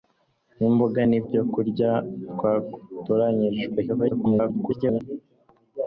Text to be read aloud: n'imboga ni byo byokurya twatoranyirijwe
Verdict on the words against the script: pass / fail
fail